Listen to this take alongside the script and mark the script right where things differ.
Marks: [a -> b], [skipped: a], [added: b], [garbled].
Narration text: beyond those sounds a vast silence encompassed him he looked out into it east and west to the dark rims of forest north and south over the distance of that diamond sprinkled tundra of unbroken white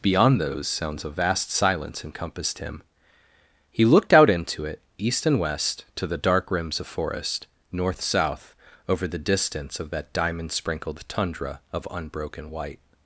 beyond those sounds a vast silence encompassed him he looked out into it east and west to the dark rims of forest north [skipped: and] south over the distance of that diamond sprinkled tundra of unbroken white